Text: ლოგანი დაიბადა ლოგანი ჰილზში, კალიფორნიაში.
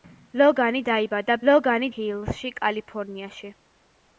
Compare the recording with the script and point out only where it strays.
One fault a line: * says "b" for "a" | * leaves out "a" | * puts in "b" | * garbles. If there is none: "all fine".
all fine